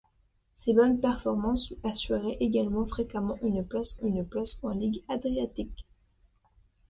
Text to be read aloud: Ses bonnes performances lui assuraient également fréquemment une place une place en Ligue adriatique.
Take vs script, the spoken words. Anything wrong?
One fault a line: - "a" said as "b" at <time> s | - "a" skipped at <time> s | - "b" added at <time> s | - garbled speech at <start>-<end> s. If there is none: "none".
none